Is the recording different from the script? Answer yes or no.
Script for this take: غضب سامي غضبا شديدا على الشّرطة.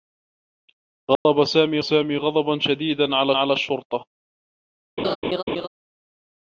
yes